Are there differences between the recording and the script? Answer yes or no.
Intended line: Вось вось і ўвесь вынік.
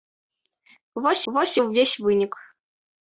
no